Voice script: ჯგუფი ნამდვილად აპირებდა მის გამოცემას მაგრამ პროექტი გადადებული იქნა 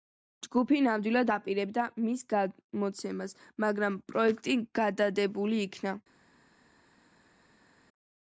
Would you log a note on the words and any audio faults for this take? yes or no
no